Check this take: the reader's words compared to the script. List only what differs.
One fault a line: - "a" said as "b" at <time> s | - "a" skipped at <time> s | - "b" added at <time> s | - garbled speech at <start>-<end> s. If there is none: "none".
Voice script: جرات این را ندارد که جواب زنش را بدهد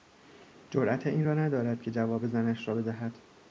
none